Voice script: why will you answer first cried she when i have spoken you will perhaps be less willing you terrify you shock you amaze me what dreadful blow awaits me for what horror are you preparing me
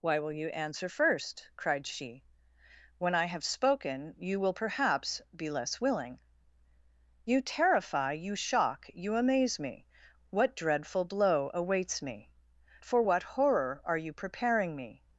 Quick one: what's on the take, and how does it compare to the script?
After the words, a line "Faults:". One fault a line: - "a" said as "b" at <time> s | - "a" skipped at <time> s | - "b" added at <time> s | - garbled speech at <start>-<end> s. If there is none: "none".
why will you answer first cried she when i have spoken you will perhaps be less willing you terrify you shock you amaze me what dreadful blow awaits me for what horror are you preparing me
Faults:
none